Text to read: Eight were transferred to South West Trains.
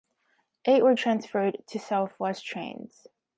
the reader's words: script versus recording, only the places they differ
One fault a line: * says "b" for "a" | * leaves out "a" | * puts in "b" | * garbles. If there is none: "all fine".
all fine